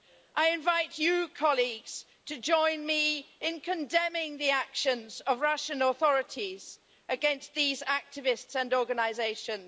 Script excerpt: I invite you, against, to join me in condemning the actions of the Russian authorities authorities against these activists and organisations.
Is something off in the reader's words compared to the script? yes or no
yes